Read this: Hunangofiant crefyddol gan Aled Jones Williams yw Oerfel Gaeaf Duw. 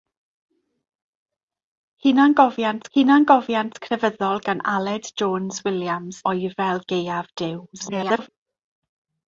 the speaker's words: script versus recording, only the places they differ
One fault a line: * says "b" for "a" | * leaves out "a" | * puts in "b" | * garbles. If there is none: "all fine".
* puts in "hunangofiant"
* leaves out "yw"
* garbles